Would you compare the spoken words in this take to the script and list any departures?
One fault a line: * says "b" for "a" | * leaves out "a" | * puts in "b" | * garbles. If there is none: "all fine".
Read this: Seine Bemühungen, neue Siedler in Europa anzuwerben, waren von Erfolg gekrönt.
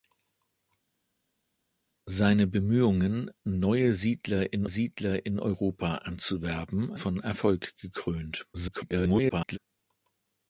* puts in "Siedler in"
* leaves out "waren"
* garbles